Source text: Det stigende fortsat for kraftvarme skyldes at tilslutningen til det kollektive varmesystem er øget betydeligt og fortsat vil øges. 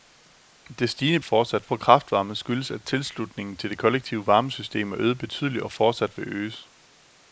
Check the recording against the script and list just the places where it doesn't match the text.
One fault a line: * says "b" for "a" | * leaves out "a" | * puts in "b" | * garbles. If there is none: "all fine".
all fine